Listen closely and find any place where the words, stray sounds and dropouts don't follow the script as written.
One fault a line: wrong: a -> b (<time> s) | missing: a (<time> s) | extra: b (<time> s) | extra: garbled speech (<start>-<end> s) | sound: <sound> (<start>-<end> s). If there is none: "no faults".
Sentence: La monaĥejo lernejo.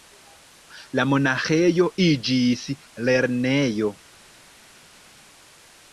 extra: iĝis (2.1 s)